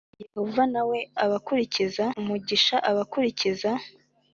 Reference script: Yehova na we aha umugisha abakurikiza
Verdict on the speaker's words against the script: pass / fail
fail